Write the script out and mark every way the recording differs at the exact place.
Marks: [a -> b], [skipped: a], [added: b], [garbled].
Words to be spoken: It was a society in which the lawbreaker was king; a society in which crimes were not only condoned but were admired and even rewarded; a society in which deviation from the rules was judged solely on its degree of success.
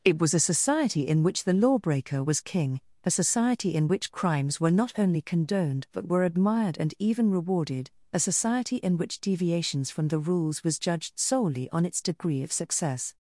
It was a society in which the lawbreaker was king; a society in which crimes were not only condoned but were admired and even rewarded; a society in which [deviation -> deviations] from the rules was judged solely on its degree of success.